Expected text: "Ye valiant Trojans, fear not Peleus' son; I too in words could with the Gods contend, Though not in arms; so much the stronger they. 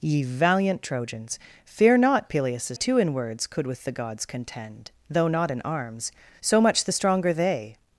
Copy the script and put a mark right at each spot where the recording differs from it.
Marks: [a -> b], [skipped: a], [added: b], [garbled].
"Ye valiant Trojans, fear not Peleus' [skipped: son; I] too in words could with the Gods contend, Though not in arms; so much the stronger they.